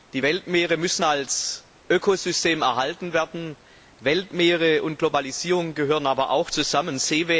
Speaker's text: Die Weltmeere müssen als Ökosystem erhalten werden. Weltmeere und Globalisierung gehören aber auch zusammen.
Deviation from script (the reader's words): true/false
false